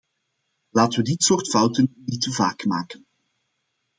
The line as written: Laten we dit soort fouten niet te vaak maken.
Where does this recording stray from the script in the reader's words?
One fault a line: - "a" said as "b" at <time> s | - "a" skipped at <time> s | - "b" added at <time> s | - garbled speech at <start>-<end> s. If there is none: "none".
none